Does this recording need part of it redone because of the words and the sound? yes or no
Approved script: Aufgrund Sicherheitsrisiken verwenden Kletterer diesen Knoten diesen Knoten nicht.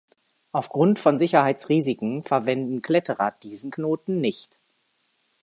yes